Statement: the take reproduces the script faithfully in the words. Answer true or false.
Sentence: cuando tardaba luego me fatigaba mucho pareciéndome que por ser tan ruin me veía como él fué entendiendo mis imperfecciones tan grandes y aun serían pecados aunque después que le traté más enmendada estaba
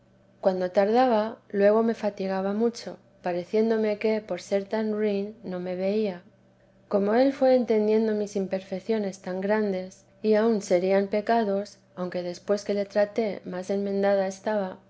false